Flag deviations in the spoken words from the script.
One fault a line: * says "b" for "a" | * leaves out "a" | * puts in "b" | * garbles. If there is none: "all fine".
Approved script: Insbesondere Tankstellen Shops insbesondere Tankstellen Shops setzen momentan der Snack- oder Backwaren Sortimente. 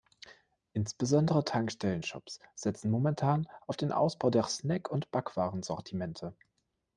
* says "setzen momentan auf den Ausbau" for "insbesondere Tankstellen Shops setzen momentan"
* says "und" for "oder"